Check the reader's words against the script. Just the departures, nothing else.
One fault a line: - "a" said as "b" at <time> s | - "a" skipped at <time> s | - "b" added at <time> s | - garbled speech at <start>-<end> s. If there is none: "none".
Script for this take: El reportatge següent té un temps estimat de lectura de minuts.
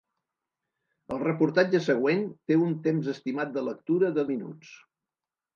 none